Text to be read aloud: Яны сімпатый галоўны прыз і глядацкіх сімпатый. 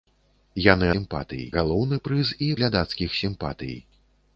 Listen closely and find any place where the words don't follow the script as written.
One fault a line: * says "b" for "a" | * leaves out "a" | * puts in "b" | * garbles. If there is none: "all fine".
all fine